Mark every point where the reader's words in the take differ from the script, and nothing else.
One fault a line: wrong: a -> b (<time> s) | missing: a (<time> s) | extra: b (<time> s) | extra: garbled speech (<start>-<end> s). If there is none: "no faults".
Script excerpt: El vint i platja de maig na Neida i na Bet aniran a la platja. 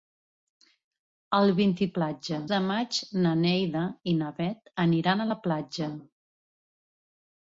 no faults